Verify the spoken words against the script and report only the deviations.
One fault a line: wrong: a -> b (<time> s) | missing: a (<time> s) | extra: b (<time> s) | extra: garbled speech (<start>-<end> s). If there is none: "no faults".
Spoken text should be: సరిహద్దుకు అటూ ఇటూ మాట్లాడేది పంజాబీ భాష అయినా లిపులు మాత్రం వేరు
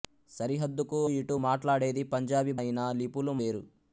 missing: అటూ (1.0 s)
missing: భాష (2.5 s)
missing: మాత్రం (3.3 s)